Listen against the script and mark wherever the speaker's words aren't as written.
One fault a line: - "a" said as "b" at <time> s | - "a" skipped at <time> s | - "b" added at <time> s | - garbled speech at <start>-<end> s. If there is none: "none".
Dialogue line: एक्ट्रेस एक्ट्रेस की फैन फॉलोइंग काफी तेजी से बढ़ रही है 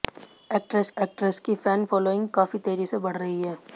none